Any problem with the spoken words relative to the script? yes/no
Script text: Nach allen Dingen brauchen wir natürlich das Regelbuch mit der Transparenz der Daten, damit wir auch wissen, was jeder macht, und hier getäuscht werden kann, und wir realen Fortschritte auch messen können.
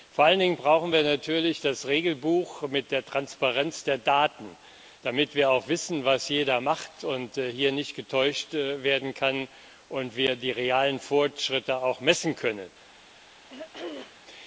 yes